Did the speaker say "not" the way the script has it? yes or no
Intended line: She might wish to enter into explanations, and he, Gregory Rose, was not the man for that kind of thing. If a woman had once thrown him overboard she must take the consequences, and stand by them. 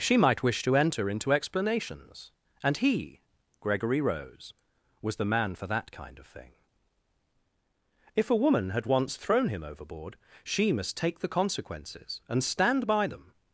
no